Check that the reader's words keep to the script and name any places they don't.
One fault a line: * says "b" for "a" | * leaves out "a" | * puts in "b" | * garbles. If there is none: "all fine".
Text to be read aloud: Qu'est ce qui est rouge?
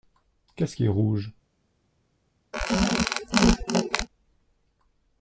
all fine